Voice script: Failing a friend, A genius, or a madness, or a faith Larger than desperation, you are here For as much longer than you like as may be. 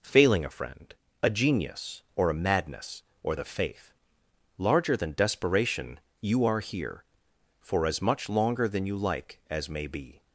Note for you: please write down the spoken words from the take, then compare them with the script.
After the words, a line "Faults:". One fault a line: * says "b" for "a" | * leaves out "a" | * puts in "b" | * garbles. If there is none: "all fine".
Failing a friend, A genius, or a madness, or the faith Larger than desperation, you are here For as much longer than you like as may be.
Faults:
* says "the" for "a"